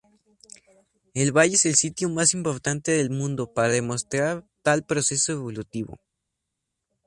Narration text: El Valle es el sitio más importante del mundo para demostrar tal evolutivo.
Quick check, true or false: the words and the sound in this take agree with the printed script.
false